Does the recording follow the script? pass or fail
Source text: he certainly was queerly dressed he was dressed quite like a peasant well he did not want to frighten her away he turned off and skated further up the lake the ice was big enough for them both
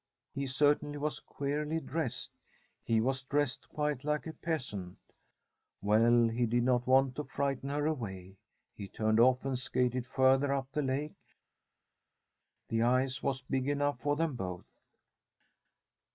pass